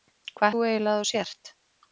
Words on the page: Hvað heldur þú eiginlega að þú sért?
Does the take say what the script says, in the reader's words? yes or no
no